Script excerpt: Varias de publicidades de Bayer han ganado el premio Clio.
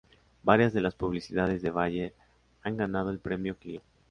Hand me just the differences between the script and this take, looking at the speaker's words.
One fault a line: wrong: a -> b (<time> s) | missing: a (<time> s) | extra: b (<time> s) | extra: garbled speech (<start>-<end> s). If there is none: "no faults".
extra: las (0.8 s)